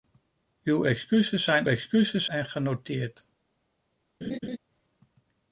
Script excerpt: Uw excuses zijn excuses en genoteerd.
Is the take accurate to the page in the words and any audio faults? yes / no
no